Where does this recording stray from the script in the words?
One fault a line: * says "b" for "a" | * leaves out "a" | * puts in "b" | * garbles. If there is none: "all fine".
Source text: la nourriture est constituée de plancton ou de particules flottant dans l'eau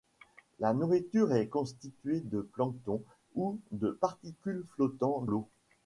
* leaves out "dans"